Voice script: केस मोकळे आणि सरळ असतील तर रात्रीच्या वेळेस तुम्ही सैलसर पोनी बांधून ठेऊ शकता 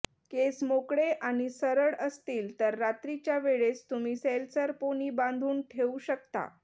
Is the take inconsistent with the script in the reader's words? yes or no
no